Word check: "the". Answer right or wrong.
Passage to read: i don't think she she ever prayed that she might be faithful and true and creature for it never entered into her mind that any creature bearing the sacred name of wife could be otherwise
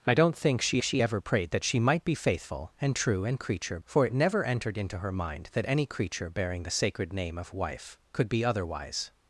right